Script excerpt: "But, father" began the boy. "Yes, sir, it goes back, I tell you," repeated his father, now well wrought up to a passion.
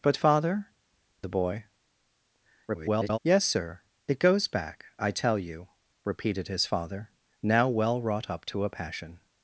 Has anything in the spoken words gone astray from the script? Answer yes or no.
yes